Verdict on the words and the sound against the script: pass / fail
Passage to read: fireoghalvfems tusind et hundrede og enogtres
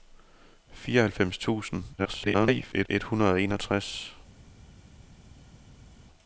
fail